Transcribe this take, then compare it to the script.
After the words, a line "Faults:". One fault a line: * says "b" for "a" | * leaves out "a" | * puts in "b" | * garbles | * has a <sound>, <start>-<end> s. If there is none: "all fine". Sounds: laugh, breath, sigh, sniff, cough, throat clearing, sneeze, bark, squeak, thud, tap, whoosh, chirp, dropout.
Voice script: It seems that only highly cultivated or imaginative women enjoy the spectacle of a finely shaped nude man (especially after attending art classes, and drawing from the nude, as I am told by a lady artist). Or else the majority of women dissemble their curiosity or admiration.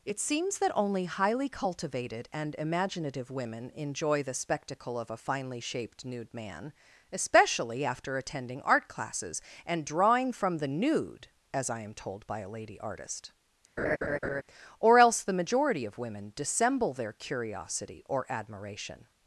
It seems that only highly cultivated and imaginative women enjoy the spectacle of a finely shaped nude man (especially after attending art classes, and drawing from the nude, as I am told by a lady artist). Or else the majority of women dissemble their curiosity or admiration.
Faults:
* says "and" for "or"
* has a laugh, 13.8-14.4 s